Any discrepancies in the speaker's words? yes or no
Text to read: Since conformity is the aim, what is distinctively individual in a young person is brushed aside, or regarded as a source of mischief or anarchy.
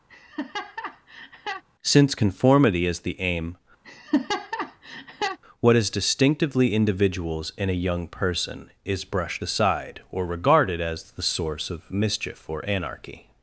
yes